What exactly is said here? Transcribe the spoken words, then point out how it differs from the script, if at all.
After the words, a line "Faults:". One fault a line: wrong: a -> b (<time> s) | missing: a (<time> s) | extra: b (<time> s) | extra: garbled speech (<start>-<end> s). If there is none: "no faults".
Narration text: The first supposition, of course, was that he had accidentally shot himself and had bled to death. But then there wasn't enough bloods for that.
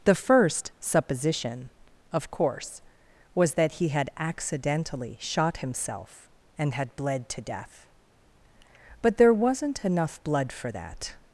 The first supposition, of course, was that he had accidentally shot himself and had bled to death. But there wasn't enough blood for that.
Faults:
missing: then (9.2 s)
wrong: bloods -> blood (10.2 s)